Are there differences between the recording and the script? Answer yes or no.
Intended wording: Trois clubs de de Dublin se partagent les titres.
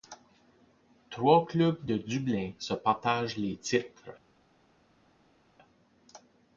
yes